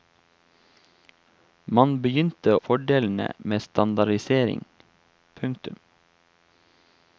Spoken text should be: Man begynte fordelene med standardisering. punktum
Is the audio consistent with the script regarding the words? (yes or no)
yes